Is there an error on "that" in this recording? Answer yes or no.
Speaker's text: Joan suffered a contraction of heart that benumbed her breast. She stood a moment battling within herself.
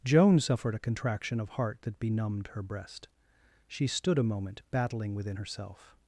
no